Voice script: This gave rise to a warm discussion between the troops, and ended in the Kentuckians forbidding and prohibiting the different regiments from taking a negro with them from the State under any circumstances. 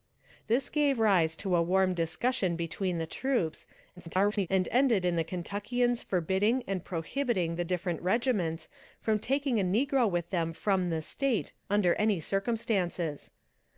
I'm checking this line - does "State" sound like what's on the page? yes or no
yes